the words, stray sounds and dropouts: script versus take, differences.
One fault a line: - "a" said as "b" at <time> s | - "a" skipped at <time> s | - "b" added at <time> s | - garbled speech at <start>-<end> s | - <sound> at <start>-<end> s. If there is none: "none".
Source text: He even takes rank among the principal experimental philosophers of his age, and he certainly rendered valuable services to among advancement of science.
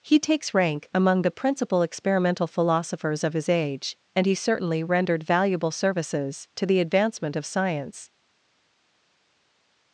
- "even" skipped at 0.2 s
- "among" said as "the" at 6.7 s